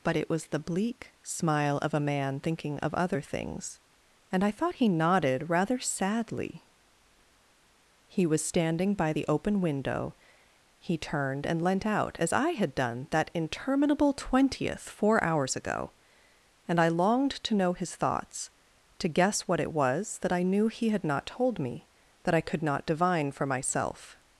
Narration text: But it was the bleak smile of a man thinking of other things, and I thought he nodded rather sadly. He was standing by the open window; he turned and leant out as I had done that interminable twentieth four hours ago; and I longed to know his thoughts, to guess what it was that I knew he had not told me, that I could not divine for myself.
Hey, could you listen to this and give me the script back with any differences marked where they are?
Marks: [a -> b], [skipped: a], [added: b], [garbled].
But it was the bleak smile of a man thinking of other things, and I thought he nodded rather sadly. He was standing by the open window; he turned and leant out as I had done that interminable twentieth four hours ago; and I longed to know his thoughts, to guess what it was that I knew he had not told me, that I could not divine for myself.